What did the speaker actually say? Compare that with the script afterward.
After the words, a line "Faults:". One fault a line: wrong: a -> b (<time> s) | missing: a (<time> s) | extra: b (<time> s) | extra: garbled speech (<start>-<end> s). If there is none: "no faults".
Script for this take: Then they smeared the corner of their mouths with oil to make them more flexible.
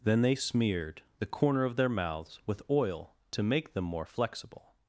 Then they smeared the corner of their mouths with oil to make them more flexible.
Faults:
no faults